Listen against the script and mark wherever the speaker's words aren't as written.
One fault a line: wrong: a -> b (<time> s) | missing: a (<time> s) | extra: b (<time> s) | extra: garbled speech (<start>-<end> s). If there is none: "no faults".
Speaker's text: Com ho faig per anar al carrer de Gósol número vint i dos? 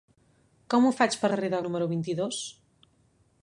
missing: anar al (1.3 s)
missing: Gósol (1.6 s)